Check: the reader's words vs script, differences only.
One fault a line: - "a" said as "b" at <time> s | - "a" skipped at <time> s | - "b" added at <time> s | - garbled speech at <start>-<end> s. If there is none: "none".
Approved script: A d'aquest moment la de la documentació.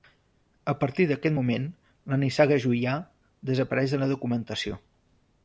- "partir" added at 0.8 s
- "nissaga Juià desapareix" added at 2.2 s